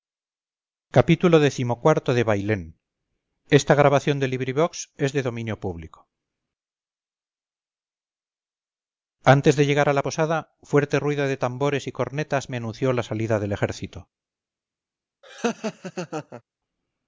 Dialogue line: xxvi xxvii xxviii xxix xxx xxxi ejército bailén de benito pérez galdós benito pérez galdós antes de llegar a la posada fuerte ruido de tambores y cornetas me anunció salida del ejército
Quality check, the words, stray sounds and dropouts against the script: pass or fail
fail